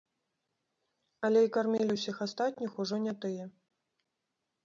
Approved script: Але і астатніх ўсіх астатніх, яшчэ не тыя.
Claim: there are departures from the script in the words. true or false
true